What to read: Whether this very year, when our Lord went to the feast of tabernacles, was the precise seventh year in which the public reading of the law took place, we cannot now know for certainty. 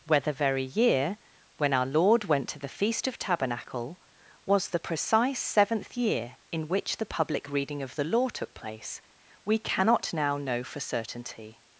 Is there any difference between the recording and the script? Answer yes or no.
yes